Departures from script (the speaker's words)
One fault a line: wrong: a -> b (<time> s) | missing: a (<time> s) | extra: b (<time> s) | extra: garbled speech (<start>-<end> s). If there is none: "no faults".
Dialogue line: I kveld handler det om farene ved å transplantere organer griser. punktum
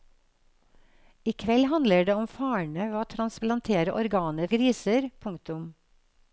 no faults